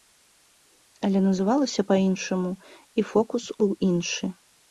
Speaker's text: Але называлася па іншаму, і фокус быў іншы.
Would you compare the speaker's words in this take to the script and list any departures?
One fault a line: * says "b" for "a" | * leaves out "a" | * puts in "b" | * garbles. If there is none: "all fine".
all fine